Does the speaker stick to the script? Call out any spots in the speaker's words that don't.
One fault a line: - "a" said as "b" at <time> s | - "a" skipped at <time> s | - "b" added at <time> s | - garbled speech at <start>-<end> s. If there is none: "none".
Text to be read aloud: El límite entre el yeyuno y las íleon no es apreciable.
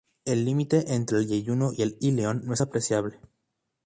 - "las" said as "el" at 1.8 s